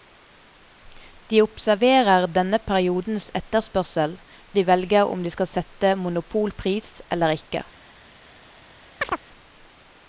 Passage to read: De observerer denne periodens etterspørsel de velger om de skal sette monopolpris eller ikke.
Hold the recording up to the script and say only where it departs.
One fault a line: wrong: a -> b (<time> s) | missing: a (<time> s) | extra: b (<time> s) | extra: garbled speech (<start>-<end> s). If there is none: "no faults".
no faults